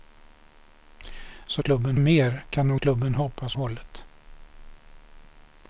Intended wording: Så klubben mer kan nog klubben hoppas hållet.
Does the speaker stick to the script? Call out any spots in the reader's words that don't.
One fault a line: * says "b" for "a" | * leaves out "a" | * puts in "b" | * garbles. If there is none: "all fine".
all fine